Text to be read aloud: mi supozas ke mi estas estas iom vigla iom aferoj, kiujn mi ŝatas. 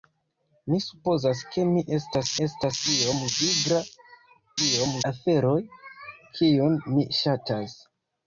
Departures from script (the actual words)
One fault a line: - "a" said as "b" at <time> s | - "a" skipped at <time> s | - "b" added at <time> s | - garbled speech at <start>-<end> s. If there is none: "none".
none